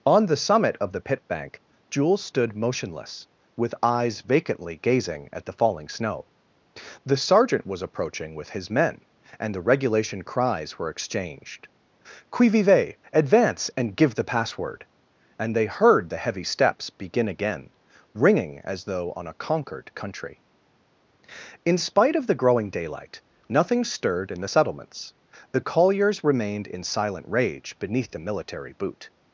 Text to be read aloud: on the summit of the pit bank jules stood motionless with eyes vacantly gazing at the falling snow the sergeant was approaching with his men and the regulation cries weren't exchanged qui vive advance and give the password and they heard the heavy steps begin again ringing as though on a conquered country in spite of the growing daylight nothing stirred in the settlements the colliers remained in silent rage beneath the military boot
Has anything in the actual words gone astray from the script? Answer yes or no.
yes